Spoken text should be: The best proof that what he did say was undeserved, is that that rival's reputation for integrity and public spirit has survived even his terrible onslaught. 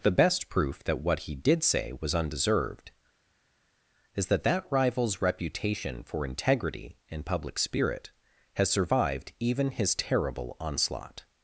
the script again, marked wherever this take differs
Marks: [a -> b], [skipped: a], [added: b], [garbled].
The best proof that what he did say was undeserved, is that that rival's reputation for integrity and public spirit has survived even his terrible onslaught.